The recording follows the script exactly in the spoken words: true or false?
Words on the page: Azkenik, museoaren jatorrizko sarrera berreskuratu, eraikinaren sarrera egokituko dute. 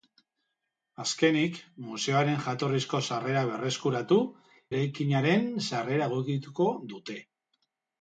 true